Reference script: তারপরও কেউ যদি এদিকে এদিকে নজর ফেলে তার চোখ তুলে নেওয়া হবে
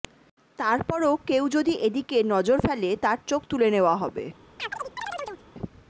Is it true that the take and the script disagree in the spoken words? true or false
true